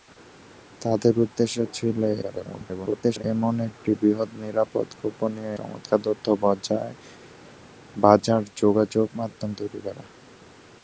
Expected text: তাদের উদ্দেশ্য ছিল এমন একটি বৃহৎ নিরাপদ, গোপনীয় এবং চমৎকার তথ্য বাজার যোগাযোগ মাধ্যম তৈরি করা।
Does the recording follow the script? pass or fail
fail